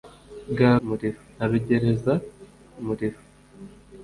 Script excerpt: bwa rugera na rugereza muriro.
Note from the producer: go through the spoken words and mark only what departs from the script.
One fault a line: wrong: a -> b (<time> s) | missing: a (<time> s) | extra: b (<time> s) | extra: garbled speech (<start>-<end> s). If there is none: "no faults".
wrong: rugera -> muriro (0.8 s)